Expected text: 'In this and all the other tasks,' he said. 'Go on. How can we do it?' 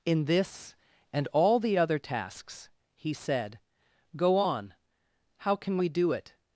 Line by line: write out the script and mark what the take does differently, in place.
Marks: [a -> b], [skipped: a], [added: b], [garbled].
'In this and all the other tasks,' he said. 'Go on. How can we do it?'